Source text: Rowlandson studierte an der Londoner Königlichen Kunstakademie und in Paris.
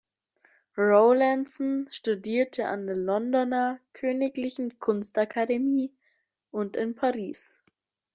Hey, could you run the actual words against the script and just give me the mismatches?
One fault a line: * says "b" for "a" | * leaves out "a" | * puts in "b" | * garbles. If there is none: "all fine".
all fine